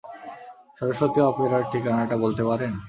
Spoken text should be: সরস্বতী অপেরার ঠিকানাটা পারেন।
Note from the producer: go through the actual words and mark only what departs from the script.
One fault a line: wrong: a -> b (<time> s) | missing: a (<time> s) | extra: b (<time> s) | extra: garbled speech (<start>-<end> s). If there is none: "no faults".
extra: বলতে (2.2 s)